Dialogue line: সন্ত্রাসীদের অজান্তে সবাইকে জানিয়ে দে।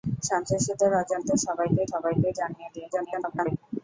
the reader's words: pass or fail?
fail